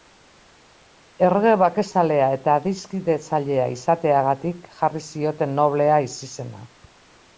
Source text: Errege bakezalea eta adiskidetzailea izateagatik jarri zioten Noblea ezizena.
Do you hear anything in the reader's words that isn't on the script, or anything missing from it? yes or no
no